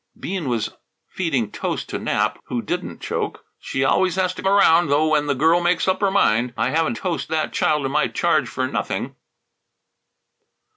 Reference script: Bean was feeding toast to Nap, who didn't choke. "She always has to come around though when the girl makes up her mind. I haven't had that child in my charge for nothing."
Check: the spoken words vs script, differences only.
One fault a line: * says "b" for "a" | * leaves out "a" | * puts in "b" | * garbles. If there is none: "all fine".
* leaves out "come"
* says "toast" for "had"